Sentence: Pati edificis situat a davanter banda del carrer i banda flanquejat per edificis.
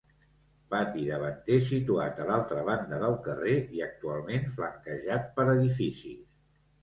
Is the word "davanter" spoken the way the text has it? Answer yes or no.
no